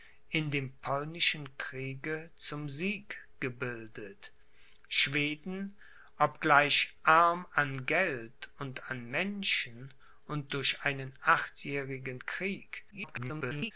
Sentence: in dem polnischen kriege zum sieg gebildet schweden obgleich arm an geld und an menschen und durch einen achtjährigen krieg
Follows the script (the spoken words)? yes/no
no